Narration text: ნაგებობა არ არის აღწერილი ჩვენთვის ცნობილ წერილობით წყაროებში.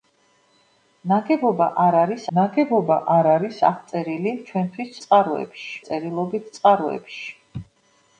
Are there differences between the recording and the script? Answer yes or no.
yes